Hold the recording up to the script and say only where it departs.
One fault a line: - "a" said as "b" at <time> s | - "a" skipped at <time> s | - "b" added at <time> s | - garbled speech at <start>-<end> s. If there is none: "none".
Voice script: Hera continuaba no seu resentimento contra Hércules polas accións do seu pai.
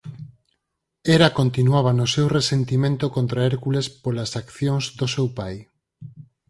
none